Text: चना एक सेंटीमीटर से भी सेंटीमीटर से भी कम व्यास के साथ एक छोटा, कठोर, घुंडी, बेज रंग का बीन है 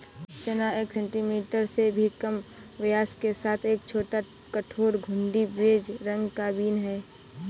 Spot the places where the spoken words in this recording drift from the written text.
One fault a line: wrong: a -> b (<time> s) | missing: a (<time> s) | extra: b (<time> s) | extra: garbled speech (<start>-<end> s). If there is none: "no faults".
missing: सेंटीमीटर से भी (2.1 s)